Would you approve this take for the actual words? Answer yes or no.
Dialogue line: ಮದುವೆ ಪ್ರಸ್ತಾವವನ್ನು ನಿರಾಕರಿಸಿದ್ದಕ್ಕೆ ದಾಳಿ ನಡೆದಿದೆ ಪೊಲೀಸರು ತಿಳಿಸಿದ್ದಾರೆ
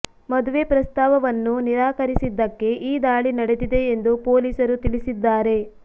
no